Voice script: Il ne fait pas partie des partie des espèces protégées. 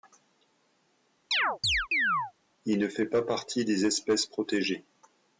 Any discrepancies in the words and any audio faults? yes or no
yes